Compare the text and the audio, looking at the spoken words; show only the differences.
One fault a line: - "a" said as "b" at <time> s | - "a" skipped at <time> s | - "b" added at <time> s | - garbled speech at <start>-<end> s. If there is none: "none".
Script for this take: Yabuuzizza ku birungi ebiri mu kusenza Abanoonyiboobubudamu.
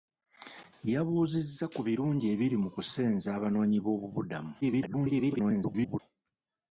- garbled speech at 4.6-6.0 s